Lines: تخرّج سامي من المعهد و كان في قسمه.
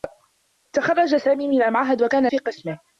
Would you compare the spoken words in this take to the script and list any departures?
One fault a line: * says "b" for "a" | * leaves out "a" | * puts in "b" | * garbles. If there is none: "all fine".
all fine